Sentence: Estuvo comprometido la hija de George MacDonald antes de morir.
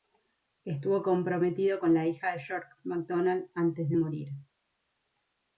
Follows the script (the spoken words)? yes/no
no